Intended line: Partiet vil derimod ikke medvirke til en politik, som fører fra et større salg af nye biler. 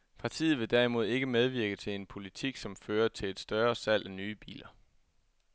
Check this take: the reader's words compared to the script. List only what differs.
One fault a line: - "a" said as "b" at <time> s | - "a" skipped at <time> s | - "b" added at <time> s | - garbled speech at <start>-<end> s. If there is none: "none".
- "fra" said as "til" at 3.1 s